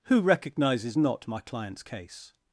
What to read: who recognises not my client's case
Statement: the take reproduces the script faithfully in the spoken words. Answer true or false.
true